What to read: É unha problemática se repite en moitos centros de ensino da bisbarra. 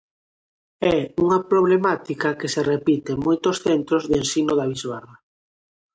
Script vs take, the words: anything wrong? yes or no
yes